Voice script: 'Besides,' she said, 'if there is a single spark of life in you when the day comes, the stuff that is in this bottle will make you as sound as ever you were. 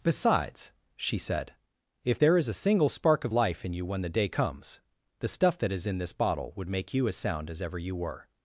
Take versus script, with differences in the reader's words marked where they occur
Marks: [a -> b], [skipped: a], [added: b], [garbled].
'Besides,' she said, 'if there is a single spark of life in you when the day comes, the stuff that is in this bottle [will -> would] make you as sound as ever you were.